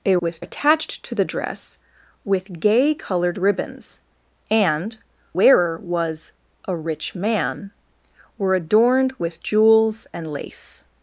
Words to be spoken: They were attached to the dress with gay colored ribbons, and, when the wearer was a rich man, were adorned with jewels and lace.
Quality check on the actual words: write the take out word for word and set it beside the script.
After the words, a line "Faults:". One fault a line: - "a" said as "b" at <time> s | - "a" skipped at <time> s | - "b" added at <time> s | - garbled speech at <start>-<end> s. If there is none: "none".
They with attached to the dress with gay colored ribbons, and, wearer was a rich man, were adorned with jewels and lace.
Faults:
- "were" said as "with" at 0.2 s
- "when the" skipped at 5.0 s